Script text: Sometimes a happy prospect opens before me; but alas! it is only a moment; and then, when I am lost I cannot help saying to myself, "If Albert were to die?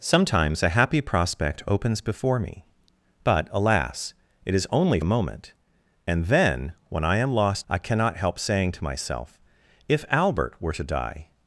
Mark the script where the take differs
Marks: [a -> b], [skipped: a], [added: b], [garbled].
Sometimes a happy prospect opens before me; but alas! it is only a moment; and then, when I am lost I cannot help saying to myself, "If Albert were to die?